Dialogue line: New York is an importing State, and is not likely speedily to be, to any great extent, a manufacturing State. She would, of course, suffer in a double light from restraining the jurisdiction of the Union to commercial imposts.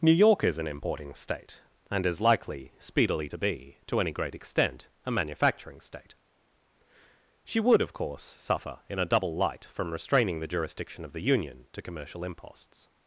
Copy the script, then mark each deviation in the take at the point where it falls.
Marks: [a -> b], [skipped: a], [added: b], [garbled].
New York is an importing State, and is [skipped: not] likely speedily to be, to any great extent, a manufacturing State. She would, of course, suffer in a double light from restraining the jurisdiction of the Union to commercial imposts.